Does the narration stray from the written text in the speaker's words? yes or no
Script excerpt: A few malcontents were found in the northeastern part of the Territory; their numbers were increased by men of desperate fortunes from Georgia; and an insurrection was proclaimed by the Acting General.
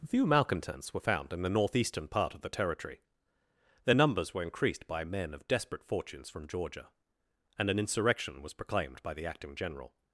yes